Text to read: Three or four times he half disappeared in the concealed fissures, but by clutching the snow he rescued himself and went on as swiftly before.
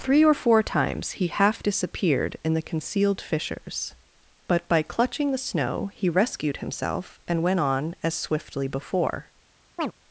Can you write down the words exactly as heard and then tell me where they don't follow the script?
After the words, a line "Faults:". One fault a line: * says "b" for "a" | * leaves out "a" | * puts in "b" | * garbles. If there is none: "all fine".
Three or four times he half disappeared in the concealed fissures, but by clutching the snow he rescued himself and went on as swiftly before.
Faults:
all fine